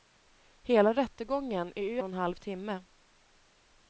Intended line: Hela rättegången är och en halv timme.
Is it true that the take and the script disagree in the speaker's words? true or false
false